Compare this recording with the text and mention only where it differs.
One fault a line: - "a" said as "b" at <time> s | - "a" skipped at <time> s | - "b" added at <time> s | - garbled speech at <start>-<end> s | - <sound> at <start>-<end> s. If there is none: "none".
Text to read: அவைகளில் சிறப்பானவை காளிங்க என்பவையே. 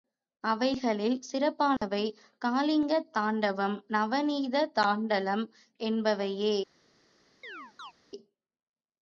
- dropout at 1.8-1.8 s
- "தாண்டவம் நவநீத தாண்டலம்" added at 3.1 s
- chirp at 7.4-7.9 s